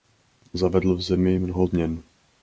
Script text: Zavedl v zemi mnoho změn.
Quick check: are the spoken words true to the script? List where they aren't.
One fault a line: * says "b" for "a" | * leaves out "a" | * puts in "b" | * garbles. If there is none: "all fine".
all fine